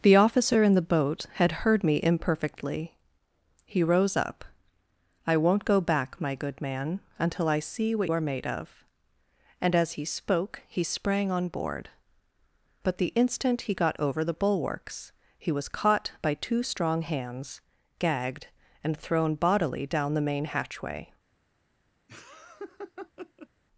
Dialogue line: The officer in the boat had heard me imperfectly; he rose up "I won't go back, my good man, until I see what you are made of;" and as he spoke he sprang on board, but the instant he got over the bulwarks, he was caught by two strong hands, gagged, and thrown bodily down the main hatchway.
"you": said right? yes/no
no